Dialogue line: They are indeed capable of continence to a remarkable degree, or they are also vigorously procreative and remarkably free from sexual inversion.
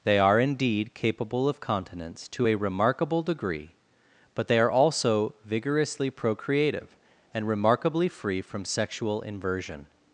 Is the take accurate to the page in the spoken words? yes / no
no